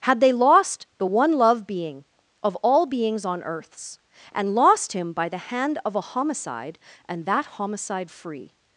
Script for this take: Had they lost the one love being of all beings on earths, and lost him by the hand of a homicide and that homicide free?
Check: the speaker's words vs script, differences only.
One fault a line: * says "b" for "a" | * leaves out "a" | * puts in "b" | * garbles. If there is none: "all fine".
all fine